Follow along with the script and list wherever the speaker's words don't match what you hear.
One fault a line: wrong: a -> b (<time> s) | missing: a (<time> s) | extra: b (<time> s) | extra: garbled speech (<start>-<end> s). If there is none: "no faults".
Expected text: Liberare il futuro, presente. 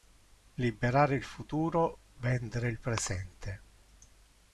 extra: vendere il (2.2 s)